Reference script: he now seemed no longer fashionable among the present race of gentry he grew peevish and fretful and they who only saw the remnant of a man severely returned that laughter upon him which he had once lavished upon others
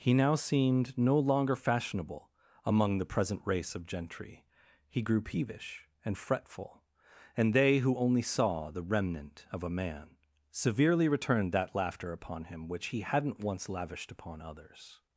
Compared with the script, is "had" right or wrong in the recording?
wrong